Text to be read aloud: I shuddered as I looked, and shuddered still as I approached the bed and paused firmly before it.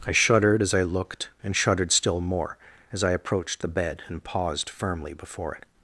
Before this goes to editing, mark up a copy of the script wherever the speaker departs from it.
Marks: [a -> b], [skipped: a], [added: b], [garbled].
I shuddered as I looked, and shuddered still [added: more] as I approached the bed and paused firmly before it.